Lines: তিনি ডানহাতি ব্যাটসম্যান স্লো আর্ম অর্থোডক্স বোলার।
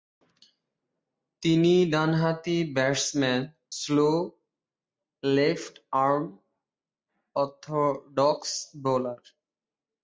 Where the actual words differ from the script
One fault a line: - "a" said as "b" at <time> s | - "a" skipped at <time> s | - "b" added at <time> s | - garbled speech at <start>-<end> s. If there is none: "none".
- "লেফট" added at 5.2 s